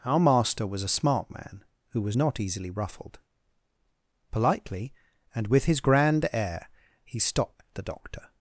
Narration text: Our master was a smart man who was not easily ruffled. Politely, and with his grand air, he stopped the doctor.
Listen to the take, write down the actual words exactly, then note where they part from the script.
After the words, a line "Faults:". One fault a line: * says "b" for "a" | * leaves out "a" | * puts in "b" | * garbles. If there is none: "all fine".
Our master was a smart man who was not easily ruffled. Politely, and with his grand air, he stopped the doctor.
Faults:
all fine